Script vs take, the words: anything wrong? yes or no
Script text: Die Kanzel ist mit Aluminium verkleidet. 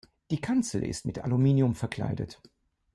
no